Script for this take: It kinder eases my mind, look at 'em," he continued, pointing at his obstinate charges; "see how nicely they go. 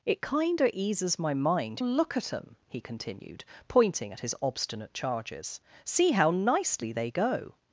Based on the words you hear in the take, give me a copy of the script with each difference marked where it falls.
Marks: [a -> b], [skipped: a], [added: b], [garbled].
It kinder eases my mind, look at 'em," he continued, pointing at his obstinate charges; "see how nicely they go.